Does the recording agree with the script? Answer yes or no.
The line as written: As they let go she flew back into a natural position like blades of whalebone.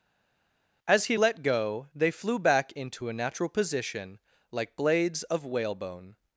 no